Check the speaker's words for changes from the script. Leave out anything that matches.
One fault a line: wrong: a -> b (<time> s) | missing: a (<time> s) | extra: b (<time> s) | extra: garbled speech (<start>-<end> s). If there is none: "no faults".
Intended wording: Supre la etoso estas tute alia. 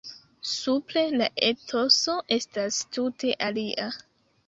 no faults